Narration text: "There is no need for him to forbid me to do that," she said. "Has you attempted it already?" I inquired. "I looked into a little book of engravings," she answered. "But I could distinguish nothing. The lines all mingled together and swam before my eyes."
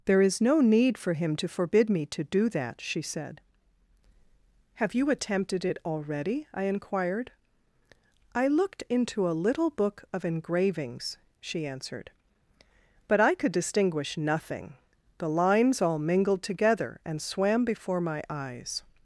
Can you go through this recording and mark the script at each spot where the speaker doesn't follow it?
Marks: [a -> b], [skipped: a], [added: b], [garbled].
"There is no need for him to forbid me to do that," she said. ["Has -> Have] you attempted it already?" I inquired. "I looked into a little book of engravings," she answered. "But I could distinguish nothing. The lines all mingled together and swam before my eyes."